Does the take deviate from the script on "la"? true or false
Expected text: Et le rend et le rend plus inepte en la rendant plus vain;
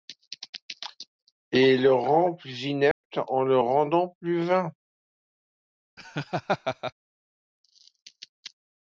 true